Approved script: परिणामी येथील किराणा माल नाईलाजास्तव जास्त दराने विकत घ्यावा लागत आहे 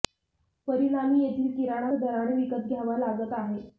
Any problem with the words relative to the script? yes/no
yes